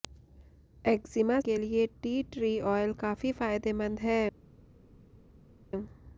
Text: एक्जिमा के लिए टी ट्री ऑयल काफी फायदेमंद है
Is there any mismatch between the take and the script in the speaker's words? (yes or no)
no